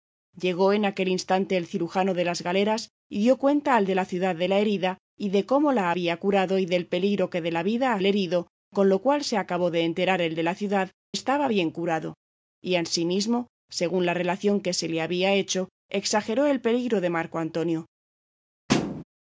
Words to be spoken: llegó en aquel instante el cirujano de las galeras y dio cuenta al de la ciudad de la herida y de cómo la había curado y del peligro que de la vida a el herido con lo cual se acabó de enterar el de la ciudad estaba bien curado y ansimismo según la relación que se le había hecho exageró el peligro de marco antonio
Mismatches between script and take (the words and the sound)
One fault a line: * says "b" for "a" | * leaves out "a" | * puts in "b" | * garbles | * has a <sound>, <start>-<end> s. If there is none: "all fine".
* has a thud, 18.7-19.0 s